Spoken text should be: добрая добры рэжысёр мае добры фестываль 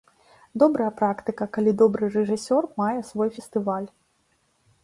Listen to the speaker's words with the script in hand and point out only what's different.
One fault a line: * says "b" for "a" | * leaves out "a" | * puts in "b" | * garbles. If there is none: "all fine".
* puts in "практыка калі"
* says "свой" for "добры"